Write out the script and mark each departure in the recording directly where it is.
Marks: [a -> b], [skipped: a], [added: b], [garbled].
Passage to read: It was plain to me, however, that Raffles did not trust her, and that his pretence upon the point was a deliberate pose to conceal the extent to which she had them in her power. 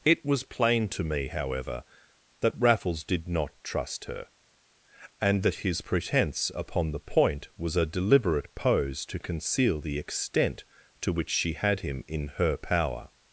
It was plain to me, however, that Raffles did not trust her, and that his pretence upon the point was a deliberate pose to conceal the extent to which she had [them -> him] in her power.